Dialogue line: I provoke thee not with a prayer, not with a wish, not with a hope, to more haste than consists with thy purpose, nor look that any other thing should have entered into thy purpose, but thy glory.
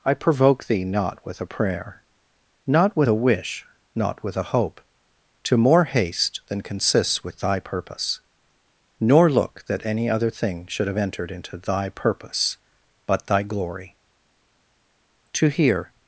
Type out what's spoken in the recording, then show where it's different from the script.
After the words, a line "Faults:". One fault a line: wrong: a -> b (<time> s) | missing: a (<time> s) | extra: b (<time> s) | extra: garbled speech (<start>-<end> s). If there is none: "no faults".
I provoke thee not with a prayer, not with a wish, not with a hope, to more haste than consists with thy purpose, nor look that any other thing should have entered into thy purpose, but thy glory. To hear
Faults:
extra: To hear (15.3 s)